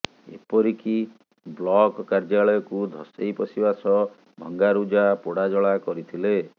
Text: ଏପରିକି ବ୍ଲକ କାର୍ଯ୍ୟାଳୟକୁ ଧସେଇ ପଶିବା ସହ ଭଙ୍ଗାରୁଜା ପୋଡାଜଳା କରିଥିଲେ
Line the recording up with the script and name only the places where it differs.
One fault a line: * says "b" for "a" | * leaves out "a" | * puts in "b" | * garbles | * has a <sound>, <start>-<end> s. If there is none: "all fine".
all fine